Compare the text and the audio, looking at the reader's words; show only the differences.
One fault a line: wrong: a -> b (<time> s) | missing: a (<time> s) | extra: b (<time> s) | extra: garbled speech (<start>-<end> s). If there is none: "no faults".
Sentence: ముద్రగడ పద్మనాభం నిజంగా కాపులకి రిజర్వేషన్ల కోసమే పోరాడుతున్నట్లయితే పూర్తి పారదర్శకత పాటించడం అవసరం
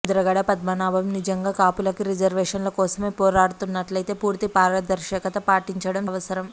no faults